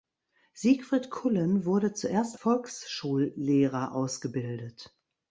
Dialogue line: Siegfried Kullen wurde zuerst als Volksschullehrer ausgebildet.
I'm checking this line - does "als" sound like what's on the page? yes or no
no